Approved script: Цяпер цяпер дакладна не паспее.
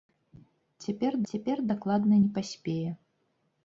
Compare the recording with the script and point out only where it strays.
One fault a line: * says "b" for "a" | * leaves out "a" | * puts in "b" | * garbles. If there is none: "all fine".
all fine